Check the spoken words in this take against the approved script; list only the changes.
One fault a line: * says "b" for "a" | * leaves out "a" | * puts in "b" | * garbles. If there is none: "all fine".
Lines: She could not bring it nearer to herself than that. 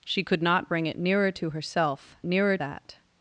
* says "nearer" for "than"